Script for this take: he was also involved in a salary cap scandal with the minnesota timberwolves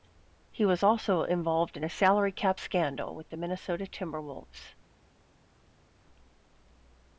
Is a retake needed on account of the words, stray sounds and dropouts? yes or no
no